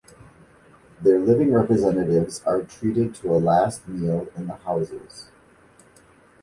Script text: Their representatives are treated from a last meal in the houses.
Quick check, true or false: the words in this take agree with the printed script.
false